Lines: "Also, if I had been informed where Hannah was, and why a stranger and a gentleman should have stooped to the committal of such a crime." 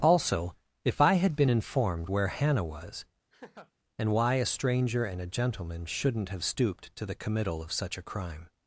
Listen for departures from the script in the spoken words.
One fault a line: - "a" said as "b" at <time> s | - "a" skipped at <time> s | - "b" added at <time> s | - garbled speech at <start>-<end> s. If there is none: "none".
- "should" said as "shouldn't" at 5.9 s